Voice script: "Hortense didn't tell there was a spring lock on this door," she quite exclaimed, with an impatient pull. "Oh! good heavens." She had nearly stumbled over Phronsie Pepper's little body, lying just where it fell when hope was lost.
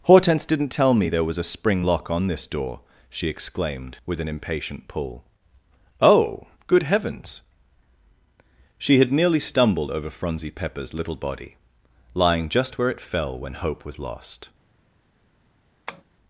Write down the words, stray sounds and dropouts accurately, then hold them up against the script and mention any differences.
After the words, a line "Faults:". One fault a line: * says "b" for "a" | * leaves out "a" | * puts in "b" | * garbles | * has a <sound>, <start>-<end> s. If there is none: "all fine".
"Hortense didn't tell me there was a spring lock on this door," she exclaimed, with an impatient pull. "Oh! good heavens." She had nearly stumbled over Phronsie Pepper's little body, lying just where it fell when hope was lost.
Faults:
* puts in "me"
* leaves out "quite"
* has a tap, 15.9-16.0 s